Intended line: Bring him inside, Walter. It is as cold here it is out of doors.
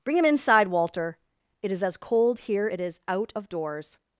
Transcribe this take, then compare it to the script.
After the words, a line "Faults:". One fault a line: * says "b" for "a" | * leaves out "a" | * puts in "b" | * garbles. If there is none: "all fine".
Bring him inside, Walter. It is as cold here it is out of doors.
Faults:
all fine